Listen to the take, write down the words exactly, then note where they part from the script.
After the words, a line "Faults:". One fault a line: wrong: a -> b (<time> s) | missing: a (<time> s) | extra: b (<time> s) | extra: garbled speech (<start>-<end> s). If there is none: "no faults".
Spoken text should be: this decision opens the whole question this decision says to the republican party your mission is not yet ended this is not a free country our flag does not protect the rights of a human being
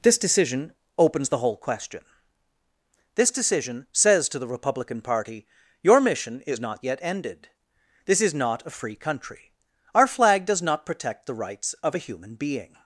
this decision opens the whole question this decision says to the republican party your mission is not yet ended this is not a free country our flag does not protect the rights of a human being
Faults:
no faults